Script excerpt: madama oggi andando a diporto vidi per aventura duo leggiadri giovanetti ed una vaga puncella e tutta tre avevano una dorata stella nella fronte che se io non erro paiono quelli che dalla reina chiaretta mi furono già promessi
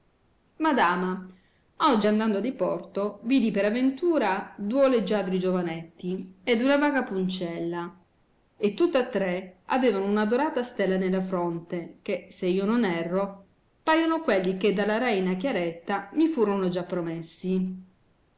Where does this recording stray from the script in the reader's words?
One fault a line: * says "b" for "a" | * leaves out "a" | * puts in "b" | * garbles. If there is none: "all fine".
all fine